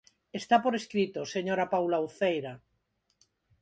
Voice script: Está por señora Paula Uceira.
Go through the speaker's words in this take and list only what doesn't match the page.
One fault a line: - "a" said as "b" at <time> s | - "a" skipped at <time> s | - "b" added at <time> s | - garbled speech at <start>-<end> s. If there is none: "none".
- "escrito" added at 0.8 s